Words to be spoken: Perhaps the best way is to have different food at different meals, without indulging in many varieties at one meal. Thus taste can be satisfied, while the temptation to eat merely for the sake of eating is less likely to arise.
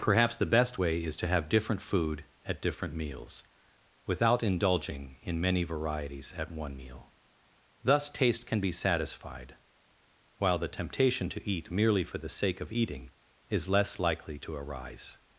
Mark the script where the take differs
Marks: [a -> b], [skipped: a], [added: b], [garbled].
Perhaps the best way is to have different food at different meals, without indulging in many varieties at one meal. Thus taste can be satisfied, while the temptation to eat merely for the sake of eating is less likely to arise.